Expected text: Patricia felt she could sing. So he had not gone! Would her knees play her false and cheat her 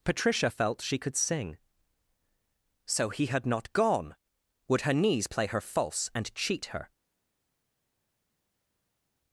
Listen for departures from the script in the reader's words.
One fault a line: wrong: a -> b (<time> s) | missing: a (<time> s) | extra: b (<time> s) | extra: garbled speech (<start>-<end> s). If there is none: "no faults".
no faults